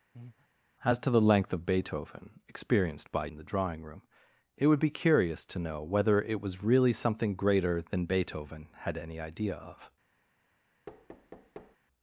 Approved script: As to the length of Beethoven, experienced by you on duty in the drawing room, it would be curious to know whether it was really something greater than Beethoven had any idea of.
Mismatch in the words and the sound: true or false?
true